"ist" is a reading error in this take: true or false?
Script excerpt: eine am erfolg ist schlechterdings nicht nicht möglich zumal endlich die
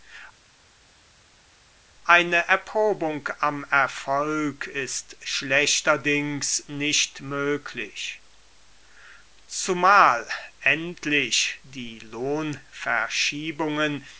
false